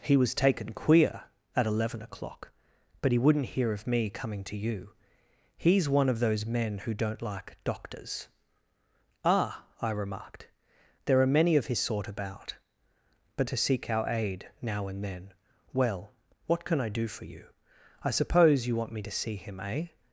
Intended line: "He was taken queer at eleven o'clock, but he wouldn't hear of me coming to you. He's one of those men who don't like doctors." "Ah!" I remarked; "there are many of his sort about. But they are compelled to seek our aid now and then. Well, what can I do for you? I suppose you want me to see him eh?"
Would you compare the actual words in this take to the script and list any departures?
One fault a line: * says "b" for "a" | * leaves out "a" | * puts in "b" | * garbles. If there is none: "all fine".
* leaves out "they are compelled"